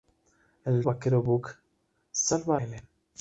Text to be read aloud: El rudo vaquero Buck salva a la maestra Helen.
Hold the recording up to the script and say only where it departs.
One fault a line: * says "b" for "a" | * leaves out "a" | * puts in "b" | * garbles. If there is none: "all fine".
* leaves out "rudo"
* leaves out "la maestra"